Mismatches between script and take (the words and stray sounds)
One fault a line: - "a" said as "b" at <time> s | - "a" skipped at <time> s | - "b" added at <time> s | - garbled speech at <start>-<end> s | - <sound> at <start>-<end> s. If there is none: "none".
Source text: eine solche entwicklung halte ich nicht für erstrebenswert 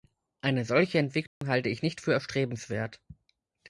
- dropout at 1.3-1.4 s